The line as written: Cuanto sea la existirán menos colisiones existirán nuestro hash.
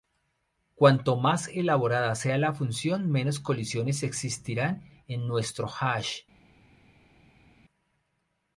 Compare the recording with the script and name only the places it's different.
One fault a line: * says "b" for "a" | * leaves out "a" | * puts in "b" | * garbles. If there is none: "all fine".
* puts in "más elaborada"
* says "función" for "existirán"
* puts in "en"